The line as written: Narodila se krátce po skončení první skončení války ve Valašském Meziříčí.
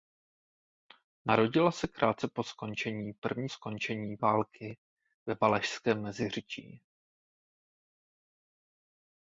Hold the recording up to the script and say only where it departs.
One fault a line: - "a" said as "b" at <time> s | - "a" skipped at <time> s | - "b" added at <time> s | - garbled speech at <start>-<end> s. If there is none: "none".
none